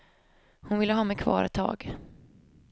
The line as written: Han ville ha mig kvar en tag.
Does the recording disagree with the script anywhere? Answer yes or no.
yes